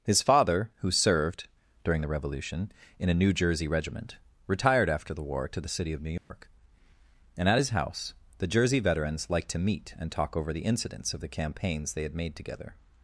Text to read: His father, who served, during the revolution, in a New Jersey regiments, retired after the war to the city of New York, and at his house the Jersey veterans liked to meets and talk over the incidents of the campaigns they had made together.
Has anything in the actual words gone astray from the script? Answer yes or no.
yes